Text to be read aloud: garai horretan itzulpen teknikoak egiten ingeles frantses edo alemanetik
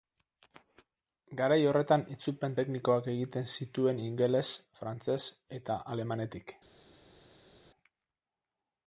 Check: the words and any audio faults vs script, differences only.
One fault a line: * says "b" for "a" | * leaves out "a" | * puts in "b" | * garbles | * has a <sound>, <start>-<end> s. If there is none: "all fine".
* puts in "zituen"
* says "eta" for "edo"